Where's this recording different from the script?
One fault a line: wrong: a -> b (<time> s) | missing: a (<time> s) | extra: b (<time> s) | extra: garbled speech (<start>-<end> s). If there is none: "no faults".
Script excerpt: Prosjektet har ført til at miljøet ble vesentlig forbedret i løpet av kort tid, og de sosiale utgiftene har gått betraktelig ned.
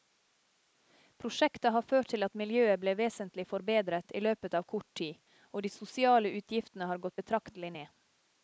no faults